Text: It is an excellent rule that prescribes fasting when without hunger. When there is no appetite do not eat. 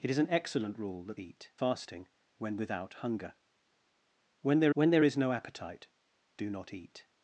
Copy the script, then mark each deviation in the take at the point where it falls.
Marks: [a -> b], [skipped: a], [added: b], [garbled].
It is an excellent rule that [prescribes -> eat] fasting when without hunger. When there [added: when there] is no appetite do not eat.